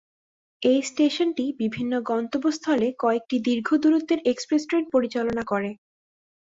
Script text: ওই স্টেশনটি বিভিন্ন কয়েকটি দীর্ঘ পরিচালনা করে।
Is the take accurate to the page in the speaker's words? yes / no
no